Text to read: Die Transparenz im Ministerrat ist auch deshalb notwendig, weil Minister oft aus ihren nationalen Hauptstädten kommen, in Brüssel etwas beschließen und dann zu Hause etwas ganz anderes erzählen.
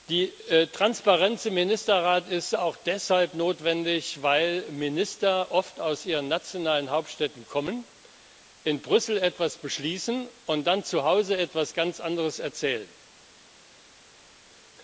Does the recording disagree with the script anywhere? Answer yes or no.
no